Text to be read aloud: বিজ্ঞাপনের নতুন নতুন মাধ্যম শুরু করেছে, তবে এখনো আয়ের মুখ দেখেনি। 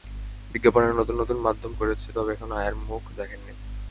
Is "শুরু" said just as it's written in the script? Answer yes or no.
no